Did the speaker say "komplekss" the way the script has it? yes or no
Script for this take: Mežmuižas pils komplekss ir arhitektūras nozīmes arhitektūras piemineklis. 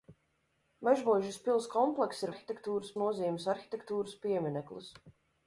yes